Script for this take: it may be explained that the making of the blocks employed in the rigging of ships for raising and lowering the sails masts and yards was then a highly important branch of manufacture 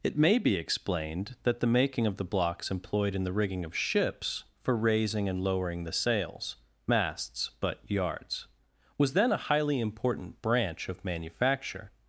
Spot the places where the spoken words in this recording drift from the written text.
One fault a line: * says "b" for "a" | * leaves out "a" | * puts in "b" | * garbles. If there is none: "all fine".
* says "but" for "and"